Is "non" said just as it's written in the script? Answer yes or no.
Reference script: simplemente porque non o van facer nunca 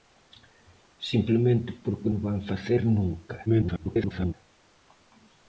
no